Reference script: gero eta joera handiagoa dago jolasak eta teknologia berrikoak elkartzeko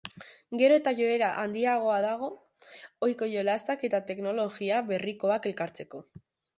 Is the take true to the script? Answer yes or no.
no